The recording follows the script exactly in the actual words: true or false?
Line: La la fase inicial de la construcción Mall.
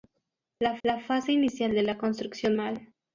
true